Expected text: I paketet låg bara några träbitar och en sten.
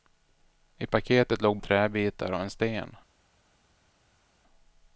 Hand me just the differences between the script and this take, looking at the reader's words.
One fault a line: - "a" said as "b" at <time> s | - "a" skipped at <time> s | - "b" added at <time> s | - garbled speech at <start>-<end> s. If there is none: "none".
- "bara några" skipped at 1.6 s